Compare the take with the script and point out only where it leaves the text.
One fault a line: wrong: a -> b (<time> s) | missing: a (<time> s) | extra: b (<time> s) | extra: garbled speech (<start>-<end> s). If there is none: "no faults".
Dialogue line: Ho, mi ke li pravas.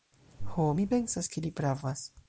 extra: pensas (0.9 s)